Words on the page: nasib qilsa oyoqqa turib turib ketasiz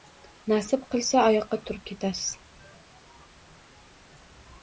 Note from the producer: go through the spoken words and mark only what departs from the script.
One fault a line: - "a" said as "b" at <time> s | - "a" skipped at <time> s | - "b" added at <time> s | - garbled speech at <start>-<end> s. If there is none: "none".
- "turib" skipped at 1.8 s